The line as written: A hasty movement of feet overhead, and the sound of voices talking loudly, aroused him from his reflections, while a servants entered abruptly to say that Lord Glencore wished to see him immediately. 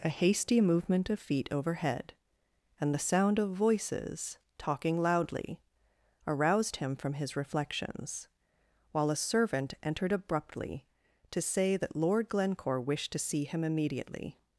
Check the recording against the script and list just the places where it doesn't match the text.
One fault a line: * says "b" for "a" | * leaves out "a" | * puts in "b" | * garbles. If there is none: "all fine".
* says "servant" for "servants"